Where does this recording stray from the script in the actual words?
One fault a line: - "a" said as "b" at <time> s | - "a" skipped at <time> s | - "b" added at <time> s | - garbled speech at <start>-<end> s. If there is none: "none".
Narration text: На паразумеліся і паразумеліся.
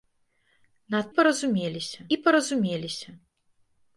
none